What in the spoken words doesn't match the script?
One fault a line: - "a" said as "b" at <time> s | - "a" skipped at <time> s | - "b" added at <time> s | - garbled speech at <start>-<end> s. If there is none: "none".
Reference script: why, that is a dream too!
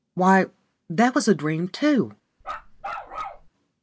- "is" said as "was" at 1.1 s